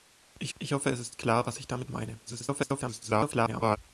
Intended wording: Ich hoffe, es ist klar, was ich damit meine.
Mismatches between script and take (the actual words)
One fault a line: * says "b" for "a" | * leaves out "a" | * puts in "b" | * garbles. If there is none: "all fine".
* puts in "ich"
* garbles